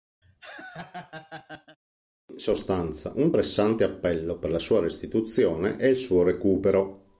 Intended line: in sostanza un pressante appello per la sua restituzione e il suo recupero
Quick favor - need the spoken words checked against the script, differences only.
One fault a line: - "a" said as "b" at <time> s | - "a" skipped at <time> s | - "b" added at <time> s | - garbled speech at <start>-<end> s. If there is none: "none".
none